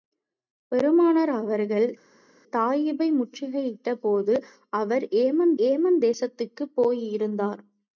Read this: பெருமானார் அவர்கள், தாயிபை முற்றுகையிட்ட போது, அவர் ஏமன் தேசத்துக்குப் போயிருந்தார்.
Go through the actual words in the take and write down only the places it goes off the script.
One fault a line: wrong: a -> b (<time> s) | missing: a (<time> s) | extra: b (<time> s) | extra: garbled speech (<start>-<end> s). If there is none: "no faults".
extra: ஏமன் (5.6 s)